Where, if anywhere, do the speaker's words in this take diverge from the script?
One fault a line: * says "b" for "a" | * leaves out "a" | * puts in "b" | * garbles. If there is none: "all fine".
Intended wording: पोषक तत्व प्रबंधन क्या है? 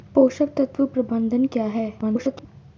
* garbles